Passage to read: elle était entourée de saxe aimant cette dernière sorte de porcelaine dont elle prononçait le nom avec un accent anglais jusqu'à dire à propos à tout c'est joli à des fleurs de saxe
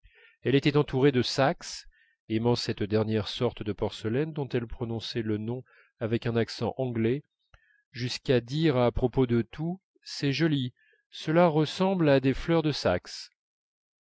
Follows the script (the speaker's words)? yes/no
no